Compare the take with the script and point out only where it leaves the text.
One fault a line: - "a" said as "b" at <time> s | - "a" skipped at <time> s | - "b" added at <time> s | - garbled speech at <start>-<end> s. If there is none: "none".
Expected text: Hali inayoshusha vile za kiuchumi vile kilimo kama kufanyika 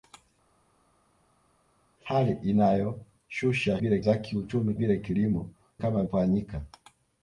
none